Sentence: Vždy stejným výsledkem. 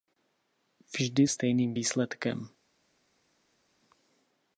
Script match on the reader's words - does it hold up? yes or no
yes